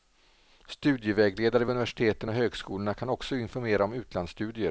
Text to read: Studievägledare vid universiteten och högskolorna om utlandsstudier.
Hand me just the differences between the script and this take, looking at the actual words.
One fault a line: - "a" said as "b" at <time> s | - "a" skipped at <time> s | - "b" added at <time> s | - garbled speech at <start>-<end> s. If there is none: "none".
- "kan också informera" added at 2.9 s